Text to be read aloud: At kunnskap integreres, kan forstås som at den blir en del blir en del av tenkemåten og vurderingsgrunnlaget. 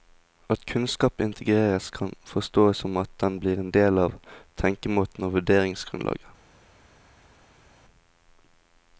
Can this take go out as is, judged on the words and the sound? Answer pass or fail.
fail